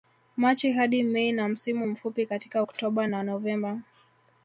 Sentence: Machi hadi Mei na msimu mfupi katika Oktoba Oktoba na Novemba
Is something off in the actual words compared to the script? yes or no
yes